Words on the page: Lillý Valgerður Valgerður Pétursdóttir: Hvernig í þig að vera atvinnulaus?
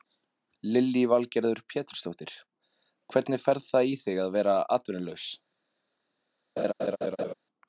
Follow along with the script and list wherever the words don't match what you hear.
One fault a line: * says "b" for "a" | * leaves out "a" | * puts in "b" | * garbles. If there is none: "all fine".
* leaves out "Valgerður"
* puts in "fer það"